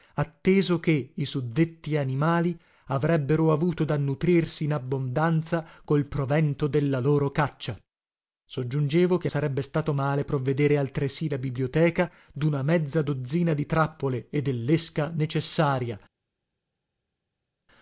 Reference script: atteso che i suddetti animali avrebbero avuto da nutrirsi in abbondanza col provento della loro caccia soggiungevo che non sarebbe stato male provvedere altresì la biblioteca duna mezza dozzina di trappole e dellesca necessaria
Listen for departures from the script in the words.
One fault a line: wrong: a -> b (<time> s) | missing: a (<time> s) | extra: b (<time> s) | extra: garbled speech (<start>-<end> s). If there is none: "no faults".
missing: non (9.3 s)